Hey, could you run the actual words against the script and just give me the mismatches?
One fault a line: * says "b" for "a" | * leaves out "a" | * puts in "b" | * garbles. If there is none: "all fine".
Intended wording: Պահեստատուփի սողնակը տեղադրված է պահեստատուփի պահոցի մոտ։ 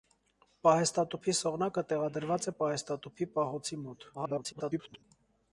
* garbles